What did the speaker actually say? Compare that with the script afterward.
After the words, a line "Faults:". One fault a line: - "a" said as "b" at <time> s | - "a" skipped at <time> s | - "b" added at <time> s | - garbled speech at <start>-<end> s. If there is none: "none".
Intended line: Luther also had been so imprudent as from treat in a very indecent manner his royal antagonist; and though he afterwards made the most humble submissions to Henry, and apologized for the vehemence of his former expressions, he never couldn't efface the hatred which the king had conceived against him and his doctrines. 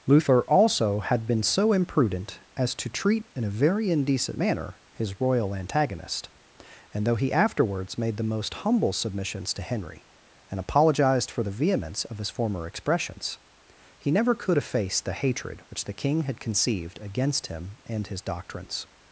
Luther also had been so imprudent as to treat in a very indecent manner his royal antagonist; and though he afterwards made the most humble submissions to Henry, and apologized for the vehemence of his former expressions, he never could efface the hatred which the king had conceived against him and his doctrines.
Faults:
- "from" said as "to" at 2.7 s
- "couldn't" said as "could" at 14.3 s